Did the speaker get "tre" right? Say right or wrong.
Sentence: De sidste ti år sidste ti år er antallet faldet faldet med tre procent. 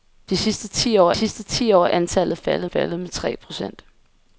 right